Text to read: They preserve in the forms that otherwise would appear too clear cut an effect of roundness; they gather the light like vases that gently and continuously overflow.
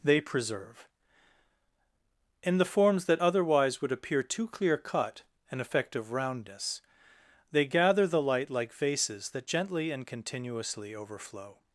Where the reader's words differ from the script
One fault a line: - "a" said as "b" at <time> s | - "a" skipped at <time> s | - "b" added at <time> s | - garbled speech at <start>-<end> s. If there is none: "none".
none